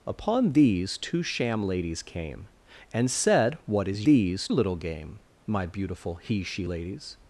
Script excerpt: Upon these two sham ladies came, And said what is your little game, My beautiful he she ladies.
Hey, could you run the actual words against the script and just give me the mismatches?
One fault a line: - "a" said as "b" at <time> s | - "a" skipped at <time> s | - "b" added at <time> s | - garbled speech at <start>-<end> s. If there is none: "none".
- "your" said as "these" at 4.0 s